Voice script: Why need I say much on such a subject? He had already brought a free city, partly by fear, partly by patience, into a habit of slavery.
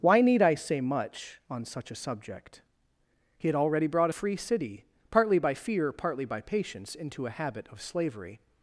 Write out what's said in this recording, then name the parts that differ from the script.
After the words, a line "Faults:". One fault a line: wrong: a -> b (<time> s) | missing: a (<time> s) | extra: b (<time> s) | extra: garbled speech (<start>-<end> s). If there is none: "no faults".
Why need I say much on such a subject? He had already brought a free city, partly by fear, partly by patience, into a habit of slavery.
Faults:
no faults